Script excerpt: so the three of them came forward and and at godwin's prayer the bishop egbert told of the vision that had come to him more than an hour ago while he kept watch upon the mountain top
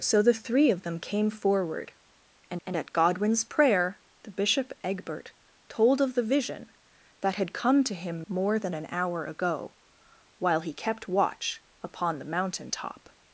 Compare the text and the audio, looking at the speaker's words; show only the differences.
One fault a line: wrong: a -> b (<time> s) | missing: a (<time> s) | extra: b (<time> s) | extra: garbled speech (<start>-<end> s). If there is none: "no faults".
no faults